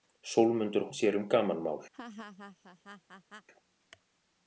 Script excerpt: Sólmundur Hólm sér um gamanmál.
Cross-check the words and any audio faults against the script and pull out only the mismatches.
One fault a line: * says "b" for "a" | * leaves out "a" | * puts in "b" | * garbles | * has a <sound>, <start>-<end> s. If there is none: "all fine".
* leaves out "Hólm"
* has a laugh, 1.9-3.5 s